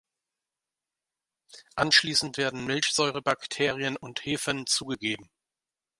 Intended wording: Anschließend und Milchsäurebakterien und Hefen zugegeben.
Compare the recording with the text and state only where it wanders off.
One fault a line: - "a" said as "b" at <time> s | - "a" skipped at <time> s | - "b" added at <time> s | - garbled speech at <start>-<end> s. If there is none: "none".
- "und" said as "werden" at 2.4 s